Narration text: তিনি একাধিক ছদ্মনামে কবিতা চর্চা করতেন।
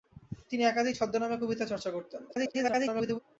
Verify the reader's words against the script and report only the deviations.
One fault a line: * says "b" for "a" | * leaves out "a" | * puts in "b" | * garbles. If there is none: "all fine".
* garbles